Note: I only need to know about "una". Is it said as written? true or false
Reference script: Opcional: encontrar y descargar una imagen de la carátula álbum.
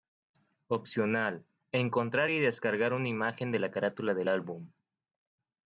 true